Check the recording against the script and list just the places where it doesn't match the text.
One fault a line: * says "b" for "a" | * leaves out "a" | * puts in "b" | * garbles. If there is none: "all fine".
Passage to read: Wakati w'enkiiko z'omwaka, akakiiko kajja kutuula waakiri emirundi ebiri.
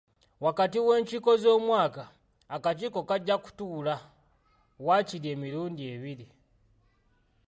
all fine